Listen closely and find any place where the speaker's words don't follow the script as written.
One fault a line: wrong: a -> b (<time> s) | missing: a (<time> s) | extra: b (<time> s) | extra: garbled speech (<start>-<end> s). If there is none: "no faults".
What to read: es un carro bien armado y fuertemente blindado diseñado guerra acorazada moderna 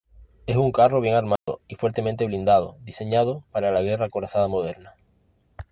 extra: para la (3.5 s)